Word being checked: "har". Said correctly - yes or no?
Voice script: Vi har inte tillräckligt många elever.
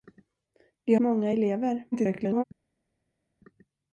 no